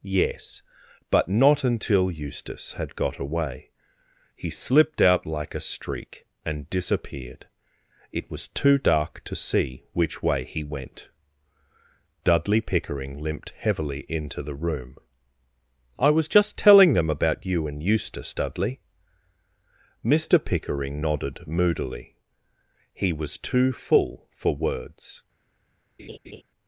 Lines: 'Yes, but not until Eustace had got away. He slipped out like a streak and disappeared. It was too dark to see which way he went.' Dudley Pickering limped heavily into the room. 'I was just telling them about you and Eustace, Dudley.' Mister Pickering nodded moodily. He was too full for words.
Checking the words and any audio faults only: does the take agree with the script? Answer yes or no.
no